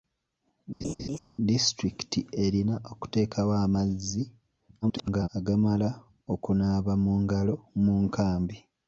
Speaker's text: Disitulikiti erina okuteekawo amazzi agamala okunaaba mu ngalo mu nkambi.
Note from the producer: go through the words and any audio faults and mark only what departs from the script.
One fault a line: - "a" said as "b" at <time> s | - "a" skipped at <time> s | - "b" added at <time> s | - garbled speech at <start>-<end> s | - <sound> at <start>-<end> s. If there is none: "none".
- laugh at 0.8-1.2 s
- garbled speech at 4.8-5.3 s